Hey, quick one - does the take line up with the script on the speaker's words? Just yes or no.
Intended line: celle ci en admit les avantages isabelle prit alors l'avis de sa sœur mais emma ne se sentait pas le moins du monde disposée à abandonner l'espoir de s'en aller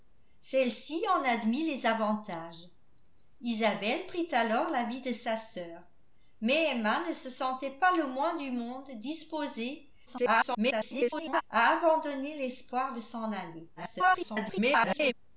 no